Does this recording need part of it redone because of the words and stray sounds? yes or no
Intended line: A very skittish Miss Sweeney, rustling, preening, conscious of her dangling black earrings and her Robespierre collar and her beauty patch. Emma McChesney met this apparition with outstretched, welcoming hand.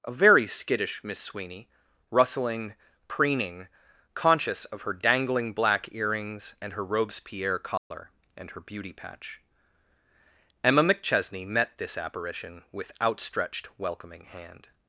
yes